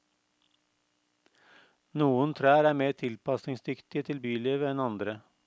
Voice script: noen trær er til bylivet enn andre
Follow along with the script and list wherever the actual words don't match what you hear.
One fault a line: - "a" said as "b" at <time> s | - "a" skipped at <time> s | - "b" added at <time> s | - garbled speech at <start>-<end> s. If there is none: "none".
- "mer tilpasningsdyktige" added at 2.8 s